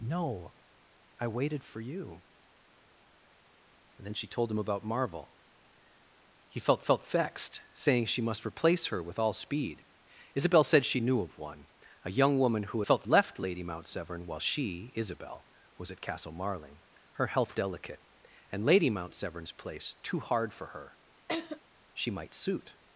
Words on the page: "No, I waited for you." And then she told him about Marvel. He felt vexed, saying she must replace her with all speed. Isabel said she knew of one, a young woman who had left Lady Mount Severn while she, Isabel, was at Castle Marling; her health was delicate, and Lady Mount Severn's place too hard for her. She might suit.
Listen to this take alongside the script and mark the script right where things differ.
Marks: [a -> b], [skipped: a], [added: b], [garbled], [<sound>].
"No, I waited for you." And then she told him about Marvel. He felt [added: felt] vexed, saying she must replace her with all speed. Isabel said she knew of one, a young woman who [had -> felt] left Lady Mount Severn while she, Isabel, was at Castle Marling; her health [skipped: was] delicate, and Lady Mount Severn's place too hard for her. [laugh] She might suit.